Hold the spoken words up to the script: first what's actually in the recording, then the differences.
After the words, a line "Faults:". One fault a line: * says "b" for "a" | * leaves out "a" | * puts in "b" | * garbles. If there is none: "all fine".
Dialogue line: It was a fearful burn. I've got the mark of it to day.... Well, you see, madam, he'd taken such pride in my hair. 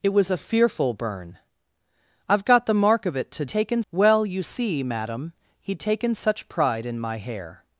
It was a fearful burn. I've got the mark of it to taken.... Well, you see, madam, he'd taken such pride in my hair.
Faults:
* says "taken" for "day"